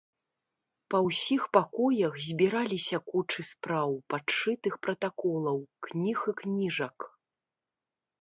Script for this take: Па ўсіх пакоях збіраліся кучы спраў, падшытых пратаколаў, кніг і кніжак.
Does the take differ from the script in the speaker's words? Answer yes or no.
no